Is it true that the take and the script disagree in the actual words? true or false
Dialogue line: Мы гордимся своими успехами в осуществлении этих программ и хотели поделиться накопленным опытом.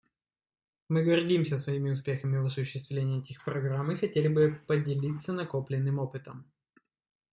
true